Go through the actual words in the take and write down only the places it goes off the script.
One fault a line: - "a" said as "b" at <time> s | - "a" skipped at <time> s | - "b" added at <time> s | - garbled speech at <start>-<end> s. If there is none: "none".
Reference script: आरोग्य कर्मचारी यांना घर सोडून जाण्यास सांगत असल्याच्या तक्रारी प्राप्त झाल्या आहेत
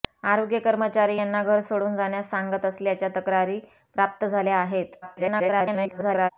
- garbled speech at 5.0-6.3 s